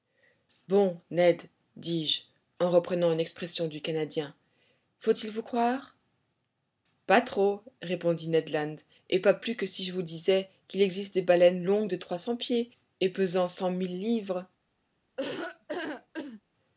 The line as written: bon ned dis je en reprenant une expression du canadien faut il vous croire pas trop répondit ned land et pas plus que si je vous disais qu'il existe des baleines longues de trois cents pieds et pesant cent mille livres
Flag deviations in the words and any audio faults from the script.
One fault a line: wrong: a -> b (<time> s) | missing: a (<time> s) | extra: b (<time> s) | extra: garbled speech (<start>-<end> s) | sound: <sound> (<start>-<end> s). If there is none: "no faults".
sound: laugh (15.2-16.4 s)